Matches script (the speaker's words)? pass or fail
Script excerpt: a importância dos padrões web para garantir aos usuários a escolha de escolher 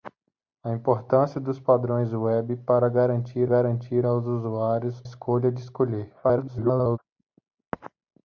fail